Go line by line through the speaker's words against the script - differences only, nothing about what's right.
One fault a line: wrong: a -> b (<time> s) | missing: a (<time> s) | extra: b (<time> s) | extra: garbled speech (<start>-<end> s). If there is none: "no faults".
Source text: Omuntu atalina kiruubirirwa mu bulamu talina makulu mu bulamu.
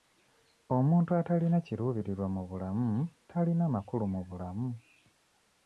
no faults